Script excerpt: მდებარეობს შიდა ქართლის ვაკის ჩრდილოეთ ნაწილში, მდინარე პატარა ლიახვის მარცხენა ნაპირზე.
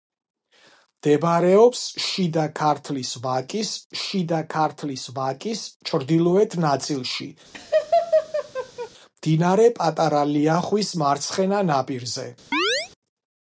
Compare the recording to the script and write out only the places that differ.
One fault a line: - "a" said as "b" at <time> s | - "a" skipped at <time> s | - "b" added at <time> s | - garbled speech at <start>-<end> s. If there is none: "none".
- "შიდა ქართლის ვაკის" added at 4.0 s